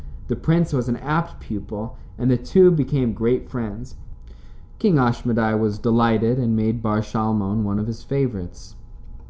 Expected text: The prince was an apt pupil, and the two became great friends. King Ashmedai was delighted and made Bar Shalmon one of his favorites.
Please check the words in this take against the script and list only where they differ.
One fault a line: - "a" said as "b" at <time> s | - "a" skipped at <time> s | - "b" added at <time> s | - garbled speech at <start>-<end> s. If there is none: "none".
none